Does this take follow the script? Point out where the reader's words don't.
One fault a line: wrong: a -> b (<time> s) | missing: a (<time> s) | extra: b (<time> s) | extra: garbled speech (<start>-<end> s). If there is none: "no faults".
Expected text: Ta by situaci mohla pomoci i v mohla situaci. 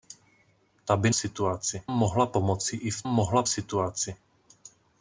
no faults